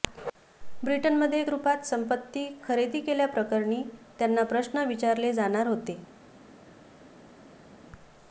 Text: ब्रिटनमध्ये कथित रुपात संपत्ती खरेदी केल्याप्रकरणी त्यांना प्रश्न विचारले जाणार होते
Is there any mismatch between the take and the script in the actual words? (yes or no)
yes